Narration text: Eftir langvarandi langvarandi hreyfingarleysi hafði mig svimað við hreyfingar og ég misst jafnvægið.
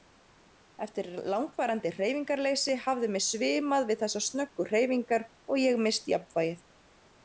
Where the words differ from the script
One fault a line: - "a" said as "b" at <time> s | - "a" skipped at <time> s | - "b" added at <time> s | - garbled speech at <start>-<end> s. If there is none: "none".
- "langvarandi" skipped at 1.9 s
- "þessar snöggu" added at 4.0 s